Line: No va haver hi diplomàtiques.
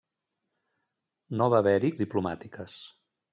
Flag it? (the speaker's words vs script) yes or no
no